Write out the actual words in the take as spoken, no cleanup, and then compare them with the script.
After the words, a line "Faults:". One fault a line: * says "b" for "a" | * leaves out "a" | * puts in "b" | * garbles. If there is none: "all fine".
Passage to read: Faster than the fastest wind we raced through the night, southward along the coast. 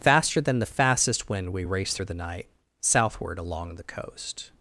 Faster than the fastest wind we raced through the night, southward along the coast.
Faults:
all fine